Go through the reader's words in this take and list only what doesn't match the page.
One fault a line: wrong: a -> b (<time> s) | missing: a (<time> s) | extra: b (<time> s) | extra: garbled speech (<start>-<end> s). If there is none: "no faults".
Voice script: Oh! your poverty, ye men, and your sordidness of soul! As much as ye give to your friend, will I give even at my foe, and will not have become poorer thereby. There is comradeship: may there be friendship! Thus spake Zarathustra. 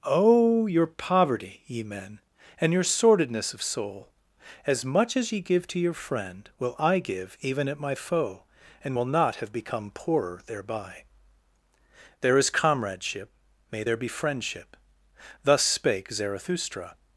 no faults